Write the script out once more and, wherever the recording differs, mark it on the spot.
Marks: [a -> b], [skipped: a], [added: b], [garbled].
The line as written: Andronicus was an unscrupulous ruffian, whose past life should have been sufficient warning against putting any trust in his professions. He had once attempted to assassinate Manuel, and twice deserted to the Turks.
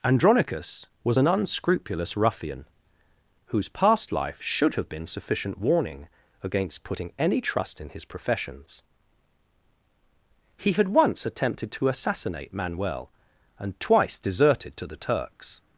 Andronicus was an unscrupulous ruffian, whose past life should have been sufficient warning against putting any trust in his professions. He had once attempted to assassinate Manuel, and twice deserted to the Turks.